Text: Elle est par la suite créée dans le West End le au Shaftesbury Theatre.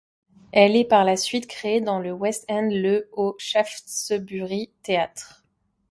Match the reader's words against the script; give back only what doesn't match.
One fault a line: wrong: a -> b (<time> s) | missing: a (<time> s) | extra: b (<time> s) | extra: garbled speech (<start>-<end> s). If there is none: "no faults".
no faults